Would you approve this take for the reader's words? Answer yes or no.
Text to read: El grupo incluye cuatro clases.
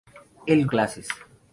no